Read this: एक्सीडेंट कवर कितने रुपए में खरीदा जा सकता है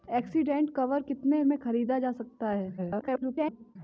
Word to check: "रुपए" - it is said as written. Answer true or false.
false